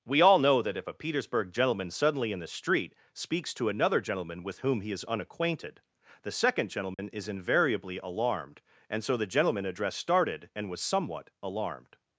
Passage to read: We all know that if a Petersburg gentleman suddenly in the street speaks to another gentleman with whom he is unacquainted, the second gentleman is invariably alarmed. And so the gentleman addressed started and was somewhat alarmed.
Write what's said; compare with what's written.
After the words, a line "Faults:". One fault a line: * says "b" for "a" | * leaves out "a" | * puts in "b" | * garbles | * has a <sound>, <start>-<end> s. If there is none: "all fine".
We all know that if a Petersburg gentleman suddenly in the street speaks to another gentleman with whom he is unacquainted, the second gentleman is invariably alarmed. And so the gentleman addressed started and was somewhat alarmed.
Faults:
* has a dropout, 6.9-7.0 s